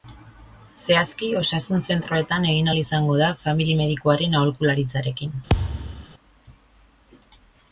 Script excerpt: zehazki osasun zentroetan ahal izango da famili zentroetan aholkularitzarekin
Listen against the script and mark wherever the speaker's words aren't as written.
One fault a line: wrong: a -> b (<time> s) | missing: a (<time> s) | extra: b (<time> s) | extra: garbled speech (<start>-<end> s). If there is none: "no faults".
extra: egin (2.5 s)
wrong: zentroetan -> medikuaren (3.8 s)